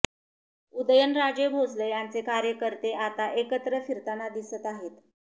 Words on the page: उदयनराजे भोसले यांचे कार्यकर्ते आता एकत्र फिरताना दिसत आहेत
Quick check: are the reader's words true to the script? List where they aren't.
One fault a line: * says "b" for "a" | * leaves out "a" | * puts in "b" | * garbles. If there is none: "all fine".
all fine